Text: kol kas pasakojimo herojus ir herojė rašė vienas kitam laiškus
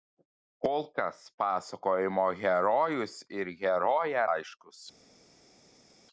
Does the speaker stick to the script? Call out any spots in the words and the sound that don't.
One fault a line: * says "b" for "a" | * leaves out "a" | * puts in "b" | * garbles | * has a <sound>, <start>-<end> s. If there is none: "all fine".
* leaves out "rašė vienas kitam"